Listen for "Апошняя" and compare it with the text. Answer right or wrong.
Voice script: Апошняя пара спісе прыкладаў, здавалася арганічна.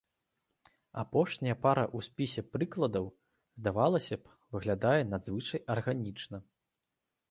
right